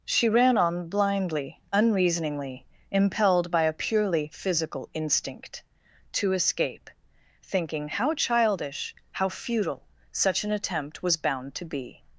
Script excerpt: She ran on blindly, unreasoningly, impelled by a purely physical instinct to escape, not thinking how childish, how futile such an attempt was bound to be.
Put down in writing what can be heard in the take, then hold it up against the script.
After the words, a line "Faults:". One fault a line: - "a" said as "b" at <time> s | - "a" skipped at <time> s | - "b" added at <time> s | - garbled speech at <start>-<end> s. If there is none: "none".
She ran on blindly, unreasoningly, impelled by a purely physical instinct to escape, thinking how childish, how futile such an attempt was bound to be.
Faults:
- "not" skipped at 6.9 s